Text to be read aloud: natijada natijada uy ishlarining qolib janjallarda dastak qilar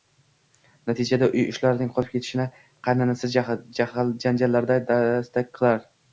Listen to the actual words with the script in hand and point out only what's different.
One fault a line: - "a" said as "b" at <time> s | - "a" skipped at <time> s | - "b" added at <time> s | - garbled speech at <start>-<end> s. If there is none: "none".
- "natijada" skipped at 1.3 s
- "ketishini qaynanasi" added at 2.1 s